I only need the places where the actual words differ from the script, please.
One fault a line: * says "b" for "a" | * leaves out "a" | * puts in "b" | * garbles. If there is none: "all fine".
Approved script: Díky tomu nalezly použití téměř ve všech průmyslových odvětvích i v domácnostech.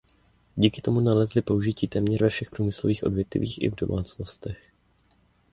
all fine